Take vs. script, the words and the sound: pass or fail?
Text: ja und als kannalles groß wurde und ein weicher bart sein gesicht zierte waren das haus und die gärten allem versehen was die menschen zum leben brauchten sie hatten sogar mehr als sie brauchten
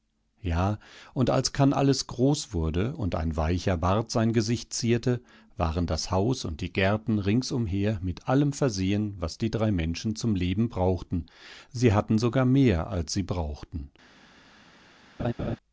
fail